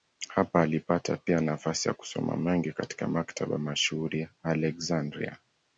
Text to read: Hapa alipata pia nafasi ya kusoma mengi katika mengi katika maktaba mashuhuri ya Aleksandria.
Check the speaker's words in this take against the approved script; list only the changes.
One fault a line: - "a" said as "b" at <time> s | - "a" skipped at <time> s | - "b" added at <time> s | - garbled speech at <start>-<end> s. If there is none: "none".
- "mengi katika" skipped at 3.1 s